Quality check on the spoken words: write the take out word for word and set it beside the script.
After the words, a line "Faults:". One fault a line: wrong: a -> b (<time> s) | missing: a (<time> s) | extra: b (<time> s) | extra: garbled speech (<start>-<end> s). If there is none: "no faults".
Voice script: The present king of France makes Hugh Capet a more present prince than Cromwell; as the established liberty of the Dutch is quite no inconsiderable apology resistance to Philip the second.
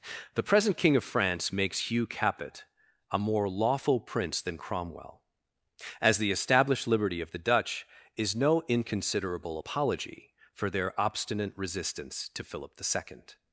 The present king of France makes Hugh Capet a more lawful prince than Cromwell; as the established liberty of the Dutch is no inconsiderable apology for their obstinate resistance to Philip the second.
Faults:
wrong: present -> lawful (3.5 s)
missing: quite (8.3 s)
extra: for their obstinate (10.5 s)